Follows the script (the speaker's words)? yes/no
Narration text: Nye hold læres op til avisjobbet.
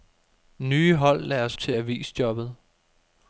no